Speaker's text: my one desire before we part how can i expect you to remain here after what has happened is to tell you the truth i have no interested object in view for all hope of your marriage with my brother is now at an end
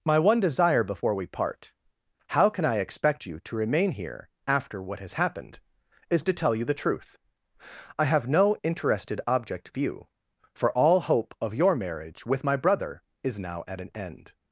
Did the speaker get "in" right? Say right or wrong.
wrong